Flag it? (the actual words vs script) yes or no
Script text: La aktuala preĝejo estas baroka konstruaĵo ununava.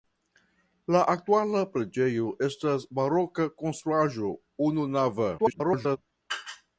yes